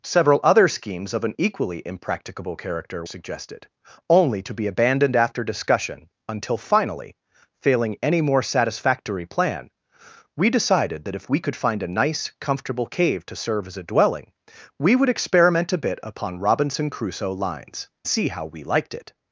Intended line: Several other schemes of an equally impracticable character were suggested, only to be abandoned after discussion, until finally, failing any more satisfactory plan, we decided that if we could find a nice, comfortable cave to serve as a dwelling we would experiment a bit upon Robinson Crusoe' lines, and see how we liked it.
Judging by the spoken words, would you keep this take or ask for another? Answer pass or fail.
fail